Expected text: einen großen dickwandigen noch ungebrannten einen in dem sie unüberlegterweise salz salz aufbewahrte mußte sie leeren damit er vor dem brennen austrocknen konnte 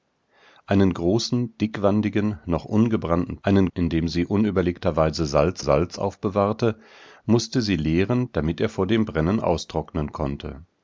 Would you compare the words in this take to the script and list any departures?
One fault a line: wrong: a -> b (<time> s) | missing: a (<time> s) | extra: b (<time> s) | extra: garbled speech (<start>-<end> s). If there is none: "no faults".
no faults